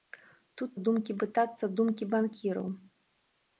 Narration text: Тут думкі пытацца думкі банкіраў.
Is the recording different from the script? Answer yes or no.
no